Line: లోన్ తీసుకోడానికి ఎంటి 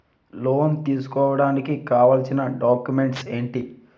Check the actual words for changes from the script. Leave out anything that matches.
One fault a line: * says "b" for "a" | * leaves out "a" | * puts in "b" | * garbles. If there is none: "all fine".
* puts in "కావాల్సిన డాక్యుమెంట్స్"